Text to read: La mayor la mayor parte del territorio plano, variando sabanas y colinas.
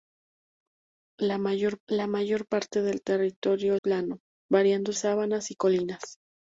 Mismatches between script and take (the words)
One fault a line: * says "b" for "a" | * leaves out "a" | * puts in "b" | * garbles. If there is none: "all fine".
all fine